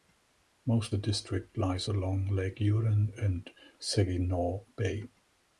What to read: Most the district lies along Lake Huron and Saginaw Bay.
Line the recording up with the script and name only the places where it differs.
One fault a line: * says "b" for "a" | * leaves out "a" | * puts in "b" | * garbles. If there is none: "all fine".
all fine